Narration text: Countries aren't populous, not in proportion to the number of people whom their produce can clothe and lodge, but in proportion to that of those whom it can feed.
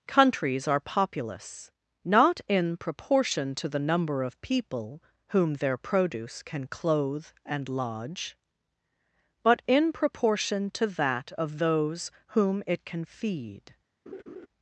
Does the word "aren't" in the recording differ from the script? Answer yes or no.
yes